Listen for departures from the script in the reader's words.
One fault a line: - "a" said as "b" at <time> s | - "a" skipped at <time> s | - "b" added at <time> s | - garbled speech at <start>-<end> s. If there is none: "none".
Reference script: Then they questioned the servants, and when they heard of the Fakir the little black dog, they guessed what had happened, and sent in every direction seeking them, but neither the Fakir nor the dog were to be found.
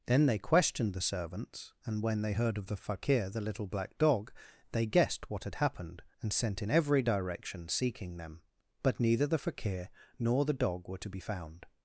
none